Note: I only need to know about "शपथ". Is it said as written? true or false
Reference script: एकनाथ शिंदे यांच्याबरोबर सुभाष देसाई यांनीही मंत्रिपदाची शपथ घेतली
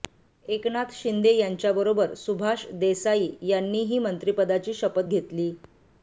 true